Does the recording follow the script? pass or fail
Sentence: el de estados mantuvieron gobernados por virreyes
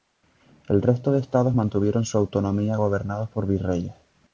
fail